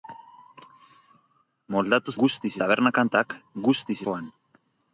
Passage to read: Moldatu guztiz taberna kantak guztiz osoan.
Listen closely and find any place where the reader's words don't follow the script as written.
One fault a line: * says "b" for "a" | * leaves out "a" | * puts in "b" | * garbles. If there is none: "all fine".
all fine